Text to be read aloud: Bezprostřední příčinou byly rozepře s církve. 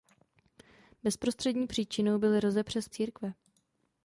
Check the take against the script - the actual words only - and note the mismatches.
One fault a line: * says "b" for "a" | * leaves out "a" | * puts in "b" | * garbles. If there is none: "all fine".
all fine